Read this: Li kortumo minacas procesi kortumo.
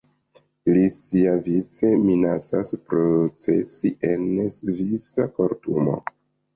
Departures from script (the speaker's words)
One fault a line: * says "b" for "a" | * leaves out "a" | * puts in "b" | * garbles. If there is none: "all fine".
* says "siavice" for "kortumo"
* puts in "en svisa"